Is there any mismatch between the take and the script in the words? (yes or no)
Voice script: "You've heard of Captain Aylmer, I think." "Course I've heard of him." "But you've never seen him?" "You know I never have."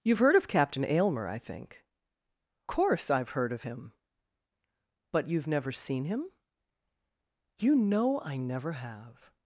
no